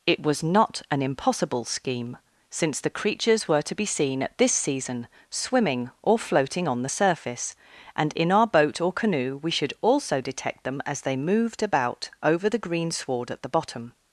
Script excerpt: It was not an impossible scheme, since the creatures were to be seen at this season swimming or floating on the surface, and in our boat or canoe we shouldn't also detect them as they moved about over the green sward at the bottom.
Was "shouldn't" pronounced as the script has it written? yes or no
no